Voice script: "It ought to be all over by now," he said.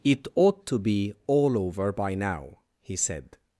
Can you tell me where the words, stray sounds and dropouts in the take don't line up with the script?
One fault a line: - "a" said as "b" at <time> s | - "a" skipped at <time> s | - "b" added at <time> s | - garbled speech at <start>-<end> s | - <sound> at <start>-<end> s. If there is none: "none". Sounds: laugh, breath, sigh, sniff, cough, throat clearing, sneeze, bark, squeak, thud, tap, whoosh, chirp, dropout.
none